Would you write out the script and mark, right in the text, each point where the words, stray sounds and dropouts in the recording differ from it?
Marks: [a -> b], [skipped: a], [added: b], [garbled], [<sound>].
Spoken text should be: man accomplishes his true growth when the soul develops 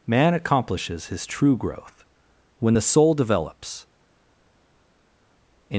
man accomplishes his true growth when the soul develops